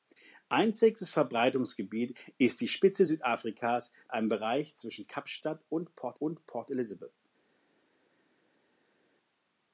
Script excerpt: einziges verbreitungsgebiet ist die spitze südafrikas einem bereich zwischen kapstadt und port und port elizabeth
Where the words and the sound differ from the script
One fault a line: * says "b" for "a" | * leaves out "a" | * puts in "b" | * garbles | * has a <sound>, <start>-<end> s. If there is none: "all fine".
all fine